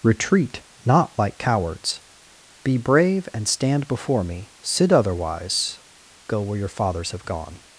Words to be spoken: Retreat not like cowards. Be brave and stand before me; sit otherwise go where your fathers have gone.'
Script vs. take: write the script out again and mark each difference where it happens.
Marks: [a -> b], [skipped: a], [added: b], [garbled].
Retreat not like cowards. Be brave and stand before me; sit otherwise go where your fathers have gone.'